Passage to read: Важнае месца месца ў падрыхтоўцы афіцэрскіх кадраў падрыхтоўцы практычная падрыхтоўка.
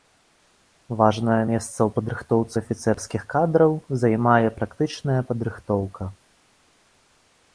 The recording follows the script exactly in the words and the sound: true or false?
false